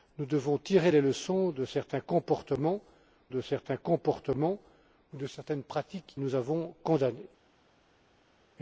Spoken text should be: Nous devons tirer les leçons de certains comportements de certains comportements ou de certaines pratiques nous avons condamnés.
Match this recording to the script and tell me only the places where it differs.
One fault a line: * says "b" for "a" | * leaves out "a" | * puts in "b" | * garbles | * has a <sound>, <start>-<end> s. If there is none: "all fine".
all fine